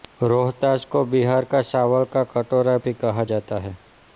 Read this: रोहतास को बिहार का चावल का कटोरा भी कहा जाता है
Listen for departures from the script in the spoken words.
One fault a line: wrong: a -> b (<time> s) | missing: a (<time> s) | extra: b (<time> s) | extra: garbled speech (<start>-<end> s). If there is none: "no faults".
no faults